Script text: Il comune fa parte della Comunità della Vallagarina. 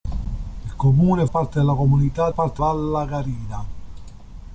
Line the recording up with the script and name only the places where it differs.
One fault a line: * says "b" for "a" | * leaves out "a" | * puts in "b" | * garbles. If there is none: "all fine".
* leaves out "fa"
* says "parte" for "della"